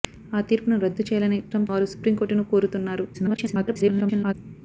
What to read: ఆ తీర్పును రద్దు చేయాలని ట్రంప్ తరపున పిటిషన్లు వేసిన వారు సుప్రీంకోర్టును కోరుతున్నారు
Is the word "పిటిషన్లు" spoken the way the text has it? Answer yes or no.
no